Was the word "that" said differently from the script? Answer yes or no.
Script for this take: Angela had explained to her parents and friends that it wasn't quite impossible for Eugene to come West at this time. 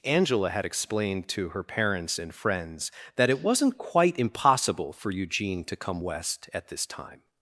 no